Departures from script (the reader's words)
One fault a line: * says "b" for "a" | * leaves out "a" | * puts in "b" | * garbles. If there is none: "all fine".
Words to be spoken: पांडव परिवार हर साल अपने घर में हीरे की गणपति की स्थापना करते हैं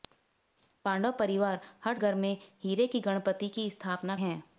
* leaves out "साल अपने"
* leaves out "करते"